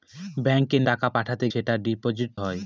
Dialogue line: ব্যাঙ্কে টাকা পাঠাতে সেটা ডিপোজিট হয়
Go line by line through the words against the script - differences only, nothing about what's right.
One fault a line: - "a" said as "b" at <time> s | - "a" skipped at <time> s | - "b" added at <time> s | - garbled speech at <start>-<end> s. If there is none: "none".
none